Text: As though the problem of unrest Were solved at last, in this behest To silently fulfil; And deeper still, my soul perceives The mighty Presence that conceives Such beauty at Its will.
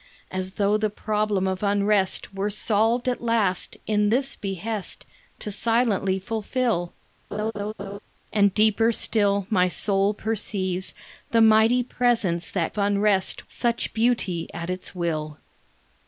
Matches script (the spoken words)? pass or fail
fail